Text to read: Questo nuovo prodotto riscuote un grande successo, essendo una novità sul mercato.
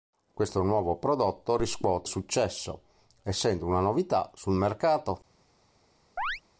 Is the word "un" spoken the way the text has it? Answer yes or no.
no